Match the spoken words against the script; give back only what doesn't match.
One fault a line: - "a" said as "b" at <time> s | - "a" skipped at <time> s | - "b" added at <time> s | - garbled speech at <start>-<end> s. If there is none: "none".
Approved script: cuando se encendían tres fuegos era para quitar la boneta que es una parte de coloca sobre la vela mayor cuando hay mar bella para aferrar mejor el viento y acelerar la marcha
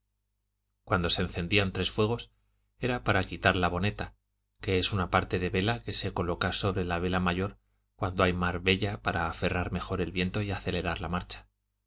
- "vela que se" added at 5.5 s